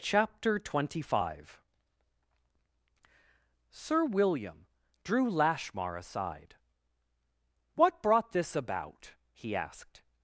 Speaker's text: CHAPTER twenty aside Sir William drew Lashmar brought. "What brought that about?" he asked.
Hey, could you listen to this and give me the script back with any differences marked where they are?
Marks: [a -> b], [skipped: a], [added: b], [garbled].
CHAPTER twenty [aside -> five] Sir William drew Lashmar [brought. -> aside] "What brought [that -> this] about?" he asked.